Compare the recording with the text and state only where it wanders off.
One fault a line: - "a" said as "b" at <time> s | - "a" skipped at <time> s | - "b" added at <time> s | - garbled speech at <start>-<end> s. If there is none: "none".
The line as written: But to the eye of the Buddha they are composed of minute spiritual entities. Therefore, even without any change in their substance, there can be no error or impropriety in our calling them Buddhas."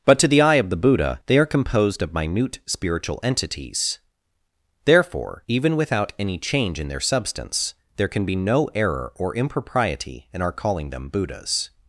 none